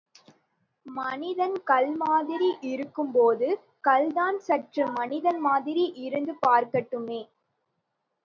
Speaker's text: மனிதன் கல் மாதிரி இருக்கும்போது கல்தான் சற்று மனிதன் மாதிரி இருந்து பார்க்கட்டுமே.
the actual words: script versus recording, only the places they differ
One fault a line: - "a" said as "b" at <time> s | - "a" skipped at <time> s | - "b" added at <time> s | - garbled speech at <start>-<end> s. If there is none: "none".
none